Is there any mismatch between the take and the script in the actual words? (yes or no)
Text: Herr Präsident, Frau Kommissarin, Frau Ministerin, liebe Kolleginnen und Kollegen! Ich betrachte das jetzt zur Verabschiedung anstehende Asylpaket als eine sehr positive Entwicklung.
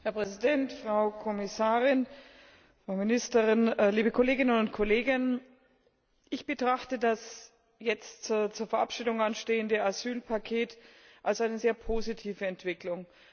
no